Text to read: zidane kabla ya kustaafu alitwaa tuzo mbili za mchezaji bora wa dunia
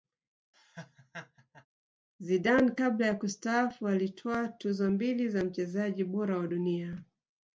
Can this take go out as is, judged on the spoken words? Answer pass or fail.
pass